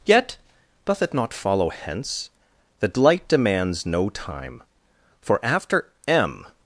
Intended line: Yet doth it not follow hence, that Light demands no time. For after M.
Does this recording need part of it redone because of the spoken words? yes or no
no